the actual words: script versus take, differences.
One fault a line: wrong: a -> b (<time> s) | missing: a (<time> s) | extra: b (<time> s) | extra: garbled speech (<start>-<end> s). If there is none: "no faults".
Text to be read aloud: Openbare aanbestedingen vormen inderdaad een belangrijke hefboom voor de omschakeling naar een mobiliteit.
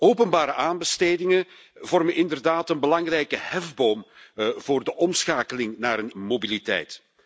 no faults